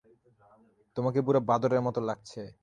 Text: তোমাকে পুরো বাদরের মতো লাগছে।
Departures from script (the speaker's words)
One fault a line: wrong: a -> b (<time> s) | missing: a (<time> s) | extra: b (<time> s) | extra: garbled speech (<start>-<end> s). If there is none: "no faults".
no faults